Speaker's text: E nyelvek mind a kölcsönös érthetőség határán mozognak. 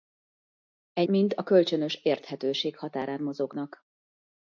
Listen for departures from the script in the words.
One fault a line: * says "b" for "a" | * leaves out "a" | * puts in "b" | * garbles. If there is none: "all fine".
* leaves out "nyelvek"